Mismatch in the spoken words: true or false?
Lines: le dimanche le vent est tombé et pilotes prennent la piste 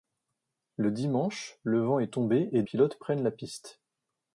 false